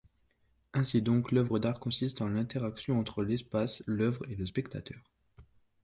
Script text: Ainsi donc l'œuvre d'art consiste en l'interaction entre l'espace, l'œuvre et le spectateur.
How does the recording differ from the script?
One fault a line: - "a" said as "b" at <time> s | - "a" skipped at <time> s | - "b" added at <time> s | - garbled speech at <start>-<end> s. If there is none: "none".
none